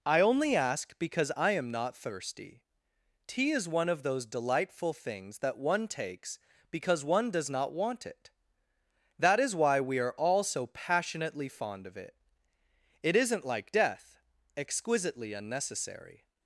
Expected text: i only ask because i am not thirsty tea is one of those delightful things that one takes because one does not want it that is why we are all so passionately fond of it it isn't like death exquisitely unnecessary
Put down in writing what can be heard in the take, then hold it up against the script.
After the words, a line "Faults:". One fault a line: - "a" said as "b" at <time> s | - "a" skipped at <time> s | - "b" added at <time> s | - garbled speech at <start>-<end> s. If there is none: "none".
i only ask because i am not thirsty tea is one of those delightful things that one takes because one does not want it that is why we are all so passionately fond of it it isn't like death exquisitely unnecessary
Faults:
none